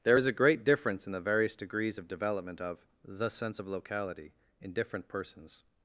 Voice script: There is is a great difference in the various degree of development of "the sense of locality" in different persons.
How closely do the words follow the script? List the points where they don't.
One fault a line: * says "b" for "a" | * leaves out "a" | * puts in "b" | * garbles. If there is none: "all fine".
* leaves out "is"
* says "degrees" for "degree"